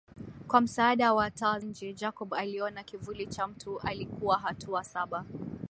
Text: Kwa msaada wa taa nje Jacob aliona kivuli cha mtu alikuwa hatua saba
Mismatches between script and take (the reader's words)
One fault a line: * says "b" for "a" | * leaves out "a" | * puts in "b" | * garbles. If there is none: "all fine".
all fine